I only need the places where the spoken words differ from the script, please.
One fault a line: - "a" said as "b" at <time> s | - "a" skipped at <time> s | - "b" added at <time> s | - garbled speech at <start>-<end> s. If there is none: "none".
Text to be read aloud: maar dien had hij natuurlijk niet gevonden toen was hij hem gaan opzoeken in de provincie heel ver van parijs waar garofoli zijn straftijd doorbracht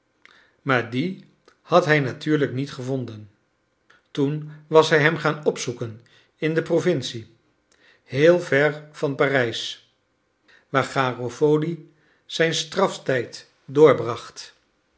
none